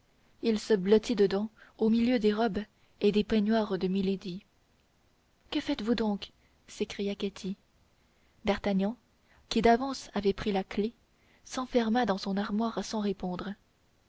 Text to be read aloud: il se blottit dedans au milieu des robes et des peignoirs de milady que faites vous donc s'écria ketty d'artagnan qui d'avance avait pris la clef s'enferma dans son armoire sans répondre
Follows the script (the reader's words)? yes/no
yes